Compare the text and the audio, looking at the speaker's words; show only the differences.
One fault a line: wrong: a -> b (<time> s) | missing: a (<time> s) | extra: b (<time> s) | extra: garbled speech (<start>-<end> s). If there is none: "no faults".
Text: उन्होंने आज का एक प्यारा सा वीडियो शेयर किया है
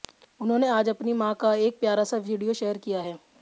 extra: अपनी मां (0.9 s)